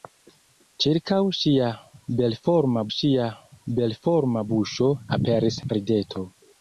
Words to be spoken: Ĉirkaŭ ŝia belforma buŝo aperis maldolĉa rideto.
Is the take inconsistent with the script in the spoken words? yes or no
yes